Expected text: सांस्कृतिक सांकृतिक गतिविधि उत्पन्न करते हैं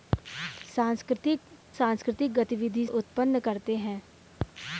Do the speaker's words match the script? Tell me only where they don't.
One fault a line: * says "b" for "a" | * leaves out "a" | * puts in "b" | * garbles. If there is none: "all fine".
all fine